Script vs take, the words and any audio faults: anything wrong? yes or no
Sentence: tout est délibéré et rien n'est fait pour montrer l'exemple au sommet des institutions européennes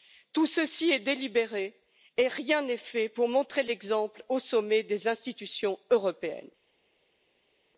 yes